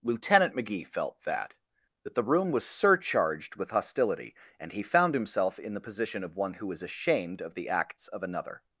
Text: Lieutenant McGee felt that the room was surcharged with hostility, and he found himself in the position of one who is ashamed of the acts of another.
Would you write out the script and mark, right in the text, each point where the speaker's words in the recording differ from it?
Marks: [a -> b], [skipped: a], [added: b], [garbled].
Lieutenant McGee felt that [added: that] the room was surcharged with hostility, and he found himself in the position of one who is ashamed of the acts of another.